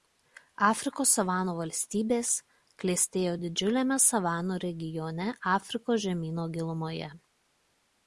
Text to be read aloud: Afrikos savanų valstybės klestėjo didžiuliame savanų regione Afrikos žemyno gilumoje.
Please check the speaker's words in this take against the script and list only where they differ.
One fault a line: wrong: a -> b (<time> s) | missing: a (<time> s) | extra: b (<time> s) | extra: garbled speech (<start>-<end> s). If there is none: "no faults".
no faults